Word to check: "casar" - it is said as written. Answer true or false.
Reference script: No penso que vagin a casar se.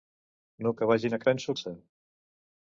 false